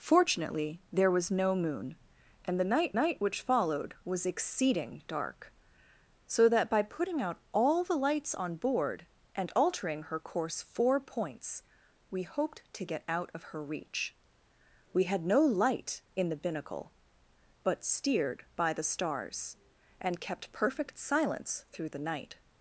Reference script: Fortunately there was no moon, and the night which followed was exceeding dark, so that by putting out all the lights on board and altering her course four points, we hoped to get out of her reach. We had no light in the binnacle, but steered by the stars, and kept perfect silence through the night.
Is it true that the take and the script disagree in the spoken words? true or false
true